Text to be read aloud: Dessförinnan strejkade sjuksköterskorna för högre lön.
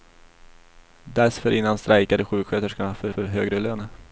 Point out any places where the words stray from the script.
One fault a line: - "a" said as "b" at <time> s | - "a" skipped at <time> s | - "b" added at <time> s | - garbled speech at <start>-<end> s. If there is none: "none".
- "för" added at 3.1 s